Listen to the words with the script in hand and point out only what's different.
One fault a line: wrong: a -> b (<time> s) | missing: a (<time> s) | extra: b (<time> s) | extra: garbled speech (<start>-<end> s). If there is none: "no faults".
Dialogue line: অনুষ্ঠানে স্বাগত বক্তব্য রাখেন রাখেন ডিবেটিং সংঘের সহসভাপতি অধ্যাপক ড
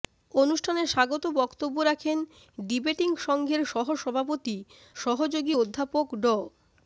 missing: রাখেন (2.2 s)
extra: সহযোগী (4.9 s)